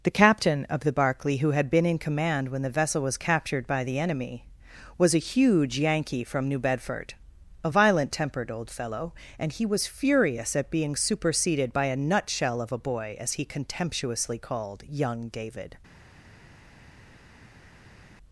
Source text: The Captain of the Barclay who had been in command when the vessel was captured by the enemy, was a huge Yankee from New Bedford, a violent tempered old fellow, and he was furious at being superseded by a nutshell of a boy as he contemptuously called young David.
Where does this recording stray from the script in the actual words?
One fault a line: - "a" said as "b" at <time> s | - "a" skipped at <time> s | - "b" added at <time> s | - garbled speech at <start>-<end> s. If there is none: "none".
none